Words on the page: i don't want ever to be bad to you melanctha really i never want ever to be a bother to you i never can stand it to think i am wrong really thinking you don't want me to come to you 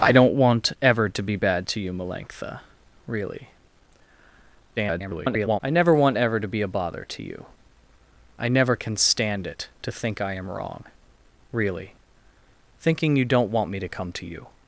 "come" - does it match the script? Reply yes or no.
yes